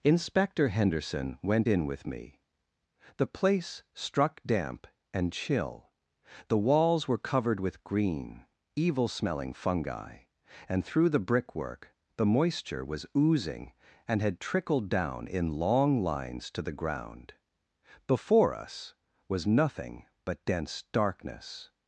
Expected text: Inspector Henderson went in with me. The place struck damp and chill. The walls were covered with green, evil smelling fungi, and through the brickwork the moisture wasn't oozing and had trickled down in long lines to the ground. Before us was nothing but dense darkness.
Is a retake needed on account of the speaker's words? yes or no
yes